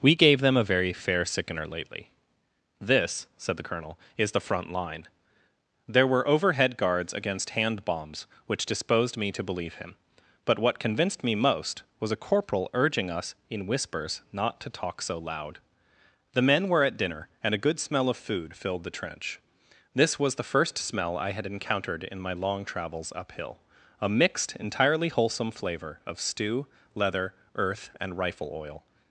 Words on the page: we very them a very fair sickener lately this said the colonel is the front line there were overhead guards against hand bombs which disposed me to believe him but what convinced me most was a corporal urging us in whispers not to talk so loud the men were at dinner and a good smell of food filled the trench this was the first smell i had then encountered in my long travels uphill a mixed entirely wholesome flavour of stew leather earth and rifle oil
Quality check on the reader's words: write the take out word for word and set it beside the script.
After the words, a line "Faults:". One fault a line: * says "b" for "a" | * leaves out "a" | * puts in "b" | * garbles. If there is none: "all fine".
we gave them a very fair sickener lately this said the colonel is the front line there were overhead guards against hand bombs which disposed me to believe him but what convinced me most was a corporal urging us in whispers not to talk so loud the men were at dinner and a good smell of food filled the trench this was the first smell i had encountered in my long travels uphill a mixed entirely wholesome flavour of stew leather earth and rifle oil
Faults:
* says "gave" for "very"
* leaves out "then"